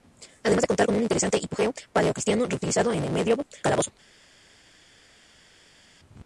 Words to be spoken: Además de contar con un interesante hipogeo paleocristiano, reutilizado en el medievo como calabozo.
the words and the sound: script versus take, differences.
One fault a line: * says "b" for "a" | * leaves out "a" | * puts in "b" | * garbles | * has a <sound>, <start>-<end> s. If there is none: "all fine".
* leaves out "como"